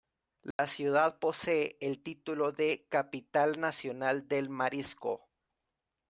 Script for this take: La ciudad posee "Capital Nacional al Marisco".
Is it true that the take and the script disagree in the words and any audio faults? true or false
true